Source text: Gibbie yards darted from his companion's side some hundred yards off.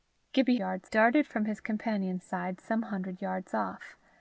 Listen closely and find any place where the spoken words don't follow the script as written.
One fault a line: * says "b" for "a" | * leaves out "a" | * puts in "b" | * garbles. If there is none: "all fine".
all fine